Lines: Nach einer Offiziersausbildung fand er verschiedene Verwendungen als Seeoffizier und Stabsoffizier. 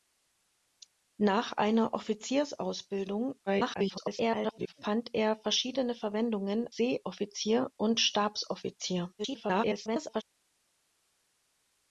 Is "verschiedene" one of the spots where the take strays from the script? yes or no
no